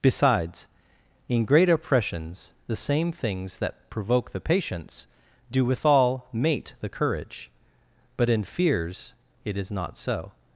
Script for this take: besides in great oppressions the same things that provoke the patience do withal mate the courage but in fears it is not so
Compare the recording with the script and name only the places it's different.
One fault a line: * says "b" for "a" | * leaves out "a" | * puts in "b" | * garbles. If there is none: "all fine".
all fine